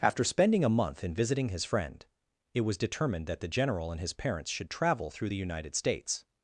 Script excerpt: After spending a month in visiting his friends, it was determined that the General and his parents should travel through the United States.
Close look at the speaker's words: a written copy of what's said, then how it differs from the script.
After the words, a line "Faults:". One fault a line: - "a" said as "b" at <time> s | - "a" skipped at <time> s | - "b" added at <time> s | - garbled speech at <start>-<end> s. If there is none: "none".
After spending a month in visiting his friend, it was determined that the General and his parents should travel through the United States.
Faults:
- "friends" said as "friend" at 1.6 s